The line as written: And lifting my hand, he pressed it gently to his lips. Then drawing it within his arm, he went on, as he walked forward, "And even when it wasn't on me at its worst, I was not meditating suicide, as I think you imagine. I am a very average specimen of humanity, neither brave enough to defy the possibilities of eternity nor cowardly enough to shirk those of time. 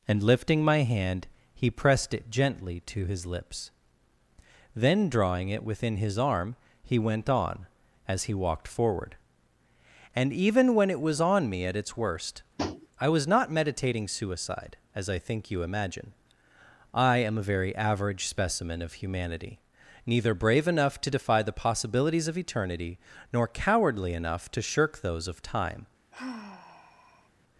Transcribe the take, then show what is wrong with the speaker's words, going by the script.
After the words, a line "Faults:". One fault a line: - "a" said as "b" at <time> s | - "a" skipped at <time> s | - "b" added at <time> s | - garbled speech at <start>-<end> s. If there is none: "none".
And lifting my hand, he pressed it gently to his lips. Then drawing it within his arm, he went on, as he walked forward, "And even when it was on me at its worst, I was not meditating suicide, as I think you imagine. I am a very average specimen of humanity, neither brave enough to defy the possibilities of eternity nor cowardly enough to shirk those of time.
Faults:
- "wasn't" said as "was" at 11.0 s